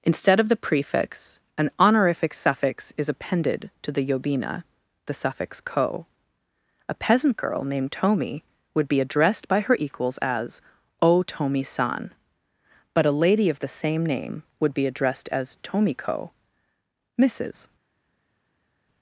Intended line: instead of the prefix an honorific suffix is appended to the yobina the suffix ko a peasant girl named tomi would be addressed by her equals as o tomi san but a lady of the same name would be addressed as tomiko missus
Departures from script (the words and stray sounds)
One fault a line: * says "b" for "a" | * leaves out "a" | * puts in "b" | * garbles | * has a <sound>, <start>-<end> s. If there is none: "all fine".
all fine